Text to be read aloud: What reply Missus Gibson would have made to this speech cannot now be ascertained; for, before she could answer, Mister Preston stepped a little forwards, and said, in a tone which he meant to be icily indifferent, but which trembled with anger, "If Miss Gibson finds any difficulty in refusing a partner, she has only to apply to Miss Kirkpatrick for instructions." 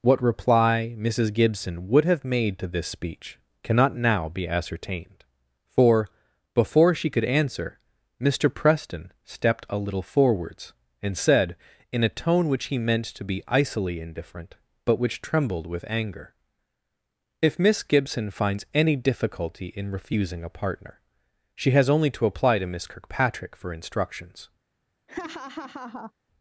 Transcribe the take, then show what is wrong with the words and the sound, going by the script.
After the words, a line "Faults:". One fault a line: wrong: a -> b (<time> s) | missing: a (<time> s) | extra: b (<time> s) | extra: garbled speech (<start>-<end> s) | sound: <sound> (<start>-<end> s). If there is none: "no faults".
What reply Missus Gibson would have made to this speech cannot now be ascertained; for, before she could answer, Mister Preston stepped a little forwards, and said, in a tone which he meant to be icily indifferent, but which trembled with anger, "If Miss Gibson finds any difficulty in refusing a partner, she has only to apply to Miss Kirkpatrick for instructions."
Faults:
sound: laugh (25.1-26.1 s)